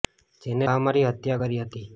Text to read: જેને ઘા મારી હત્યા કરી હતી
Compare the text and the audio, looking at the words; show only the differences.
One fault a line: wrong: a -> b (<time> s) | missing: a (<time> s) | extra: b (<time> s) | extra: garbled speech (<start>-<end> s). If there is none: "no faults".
no faults